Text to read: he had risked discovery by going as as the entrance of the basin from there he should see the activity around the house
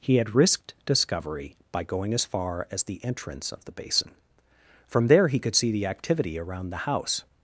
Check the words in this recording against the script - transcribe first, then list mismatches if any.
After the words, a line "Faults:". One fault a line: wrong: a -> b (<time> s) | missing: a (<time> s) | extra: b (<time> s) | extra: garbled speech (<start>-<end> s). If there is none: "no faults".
he had risked discovery by going as far as the entrance of the basin from there he could see the activity around the house
Faults:
extra: far (2.2 s)
wrong: should -> could (5.4 s)